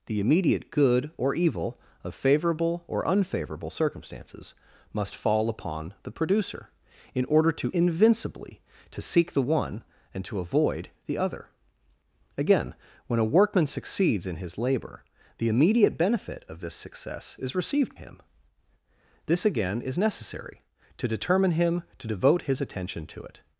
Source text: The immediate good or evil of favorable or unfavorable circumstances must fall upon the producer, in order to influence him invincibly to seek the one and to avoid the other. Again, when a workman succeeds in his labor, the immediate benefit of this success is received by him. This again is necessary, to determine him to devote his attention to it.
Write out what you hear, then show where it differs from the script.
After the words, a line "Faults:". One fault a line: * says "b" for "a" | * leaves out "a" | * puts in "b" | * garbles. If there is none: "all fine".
The immediate good or evil of favorable or unfavorable circumstances must fall upon the producer, in order to invincibly to seek the one and to avoid the other. Again, when a workman succeeds in his labor, the immediate benefit of this success is received him. This again is necessary, to determine him to devote his attention to it.
Faults:
* leaves out "influence him"
* leaves out "by"